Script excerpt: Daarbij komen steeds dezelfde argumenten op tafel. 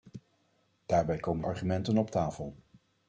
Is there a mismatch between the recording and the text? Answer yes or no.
yes